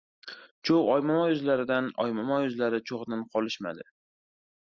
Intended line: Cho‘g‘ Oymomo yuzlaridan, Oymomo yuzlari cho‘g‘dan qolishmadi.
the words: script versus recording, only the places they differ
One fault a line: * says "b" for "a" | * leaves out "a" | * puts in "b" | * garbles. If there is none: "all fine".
all fine